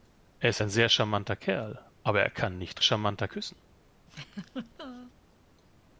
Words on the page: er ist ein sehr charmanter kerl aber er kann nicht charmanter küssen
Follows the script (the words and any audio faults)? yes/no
no